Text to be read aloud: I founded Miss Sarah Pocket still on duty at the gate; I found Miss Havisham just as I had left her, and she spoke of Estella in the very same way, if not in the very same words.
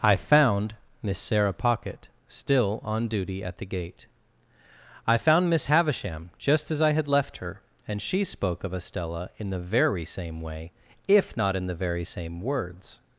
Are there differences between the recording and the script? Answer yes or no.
yes